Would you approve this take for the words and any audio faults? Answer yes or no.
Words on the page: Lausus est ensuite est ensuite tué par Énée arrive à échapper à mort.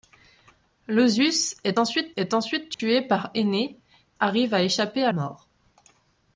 no